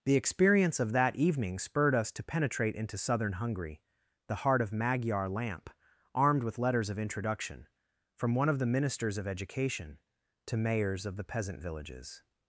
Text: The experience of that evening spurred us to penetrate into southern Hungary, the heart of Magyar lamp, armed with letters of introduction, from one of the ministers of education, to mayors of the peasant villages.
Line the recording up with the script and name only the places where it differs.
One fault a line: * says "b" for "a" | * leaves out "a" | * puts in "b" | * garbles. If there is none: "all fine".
all fine